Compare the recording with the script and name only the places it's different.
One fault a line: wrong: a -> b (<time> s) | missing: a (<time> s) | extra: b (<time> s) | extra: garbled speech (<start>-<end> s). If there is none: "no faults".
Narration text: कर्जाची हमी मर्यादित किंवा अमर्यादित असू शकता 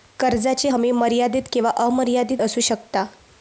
no faults